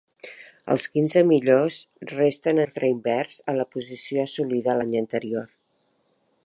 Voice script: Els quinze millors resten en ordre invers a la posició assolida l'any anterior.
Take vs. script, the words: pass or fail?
fail